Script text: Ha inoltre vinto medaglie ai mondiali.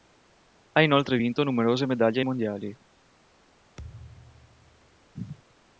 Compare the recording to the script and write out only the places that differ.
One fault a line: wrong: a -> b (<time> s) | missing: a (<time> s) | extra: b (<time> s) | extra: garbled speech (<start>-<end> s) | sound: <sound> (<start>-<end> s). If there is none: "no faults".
extra: numerose (1.4 s)
sound: thud (3.8-5.1 s)